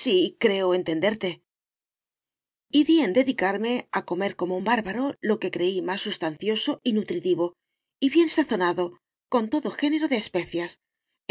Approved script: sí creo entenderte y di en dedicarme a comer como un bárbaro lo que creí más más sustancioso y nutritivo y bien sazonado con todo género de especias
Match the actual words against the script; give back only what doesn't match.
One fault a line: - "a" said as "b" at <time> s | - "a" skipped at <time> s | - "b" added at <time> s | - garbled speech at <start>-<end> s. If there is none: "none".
- "más" skipped at 6.0 s